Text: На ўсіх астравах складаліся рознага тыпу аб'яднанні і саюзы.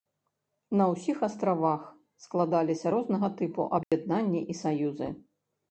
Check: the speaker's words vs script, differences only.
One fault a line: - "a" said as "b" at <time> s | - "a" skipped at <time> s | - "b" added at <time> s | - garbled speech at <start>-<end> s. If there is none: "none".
none